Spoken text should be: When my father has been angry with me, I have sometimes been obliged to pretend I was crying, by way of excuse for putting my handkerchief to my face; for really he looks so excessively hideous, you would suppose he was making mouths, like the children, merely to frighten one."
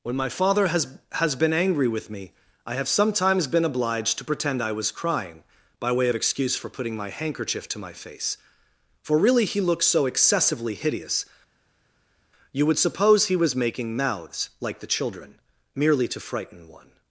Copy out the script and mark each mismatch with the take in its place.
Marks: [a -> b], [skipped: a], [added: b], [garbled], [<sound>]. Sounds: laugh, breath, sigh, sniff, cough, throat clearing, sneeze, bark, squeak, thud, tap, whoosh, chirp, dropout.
When my father has [added: has] been angry with me, I have sometimes been obliged to pretend I was crying, by way of excuse for putting my handkerchief to my face; for really he looks so excessively hideous, you would suppose he was making mouths, like the children, merely to frighten one."